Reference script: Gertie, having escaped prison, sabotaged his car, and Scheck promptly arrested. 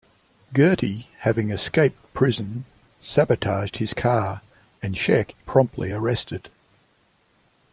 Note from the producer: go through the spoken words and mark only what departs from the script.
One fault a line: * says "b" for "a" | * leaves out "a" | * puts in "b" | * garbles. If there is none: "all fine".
all fine